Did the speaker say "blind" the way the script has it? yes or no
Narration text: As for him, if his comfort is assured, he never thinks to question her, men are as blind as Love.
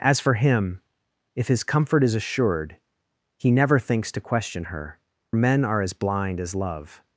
yes